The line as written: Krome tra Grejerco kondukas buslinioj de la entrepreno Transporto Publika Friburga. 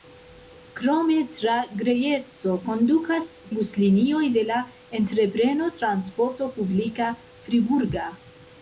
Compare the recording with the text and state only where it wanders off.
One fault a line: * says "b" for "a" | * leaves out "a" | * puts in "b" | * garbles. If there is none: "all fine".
all fine